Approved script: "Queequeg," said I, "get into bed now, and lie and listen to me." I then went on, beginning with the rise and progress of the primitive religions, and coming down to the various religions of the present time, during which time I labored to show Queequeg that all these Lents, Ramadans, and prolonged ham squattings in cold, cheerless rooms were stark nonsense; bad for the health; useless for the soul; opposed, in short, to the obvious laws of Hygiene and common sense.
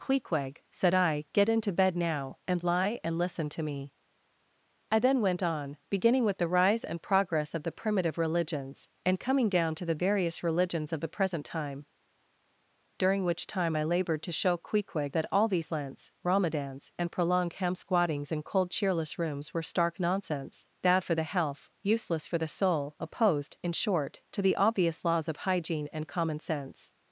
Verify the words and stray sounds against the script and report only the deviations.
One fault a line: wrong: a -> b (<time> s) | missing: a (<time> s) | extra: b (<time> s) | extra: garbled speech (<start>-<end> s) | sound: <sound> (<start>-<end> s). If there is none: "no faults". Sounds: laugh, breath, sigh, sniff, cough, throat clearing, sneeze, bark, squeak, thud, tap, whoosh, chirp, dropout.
no faults